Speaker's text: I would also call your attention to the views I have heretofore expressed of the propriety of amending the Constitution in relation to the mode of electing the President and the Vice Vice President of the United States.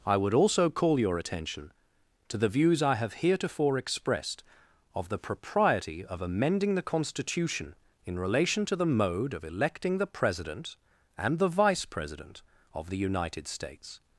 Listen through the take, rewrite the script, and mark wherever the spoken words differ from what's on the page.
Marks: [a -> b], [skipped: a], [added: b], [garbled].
I would also call your attention to the views I have heretofore expressed of the propriety of amending the Constitution in relation to the mode of electing the President and the Vice [skipped: Vice] President of the United States.